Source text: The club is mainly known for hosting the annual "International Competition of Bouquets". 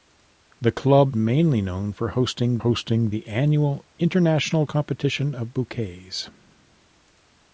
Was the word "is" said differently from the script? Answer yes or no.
yes